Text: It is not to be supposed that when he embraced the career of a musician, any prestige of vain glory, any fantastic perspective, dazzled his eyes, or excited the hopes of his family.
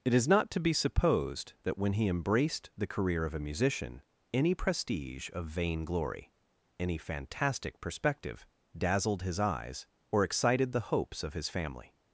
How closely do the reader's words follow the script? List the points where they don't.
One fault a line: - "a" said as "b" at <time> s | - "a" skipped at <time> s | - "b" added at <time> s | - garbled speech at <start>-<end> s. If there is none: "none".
none